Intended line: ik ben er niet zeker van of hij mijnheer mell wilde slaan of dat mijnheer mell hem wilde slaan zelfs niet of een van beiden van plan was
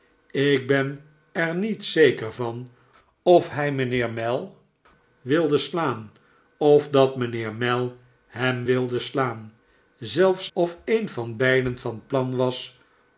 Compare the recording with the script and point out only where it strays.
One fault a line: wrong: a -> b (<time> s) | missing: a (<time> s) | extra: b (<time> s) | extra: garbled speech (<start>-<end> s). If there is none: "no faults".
missing: niet (10.5 s)